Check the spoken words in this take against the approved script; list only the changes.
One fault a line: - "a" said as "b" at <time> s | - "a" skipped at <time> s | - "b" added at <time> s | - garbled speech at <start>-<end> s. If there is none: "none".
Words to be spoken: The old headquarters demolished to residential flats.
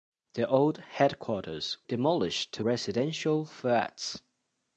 none